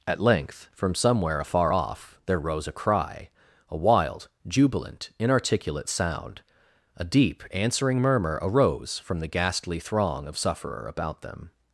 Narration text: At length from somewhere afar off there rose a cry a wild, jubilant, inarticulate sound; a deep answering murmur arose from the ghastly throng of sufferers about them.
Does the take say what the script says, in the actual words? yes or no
no